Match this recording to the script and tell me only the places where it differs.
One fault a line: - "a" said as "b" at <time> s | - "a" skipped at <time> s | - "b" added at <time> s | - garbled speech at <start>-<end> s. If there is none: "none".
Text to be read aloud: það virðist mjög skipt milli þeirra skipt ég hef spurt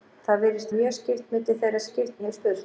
none